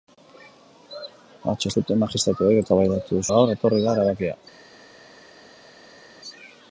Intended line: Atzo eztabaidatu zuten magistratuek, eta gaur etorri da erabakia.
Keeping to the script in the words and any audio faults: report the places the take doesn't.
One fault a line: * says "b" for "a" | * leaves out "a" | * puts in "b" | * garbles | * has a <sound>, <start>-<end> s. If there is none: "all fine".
* leaves out "eztabaidatu"
* says "eztabaidatu" for "eta"